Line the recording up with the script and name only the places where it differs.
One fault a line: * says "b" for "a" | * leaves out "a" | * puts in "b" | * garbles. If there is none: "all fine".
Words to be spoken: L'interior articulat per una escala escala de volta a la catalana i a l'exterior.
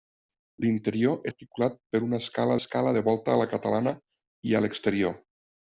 all fine